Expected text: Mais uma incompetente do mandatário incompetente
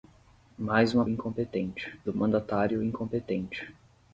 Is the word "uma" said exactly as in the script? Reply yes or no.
yes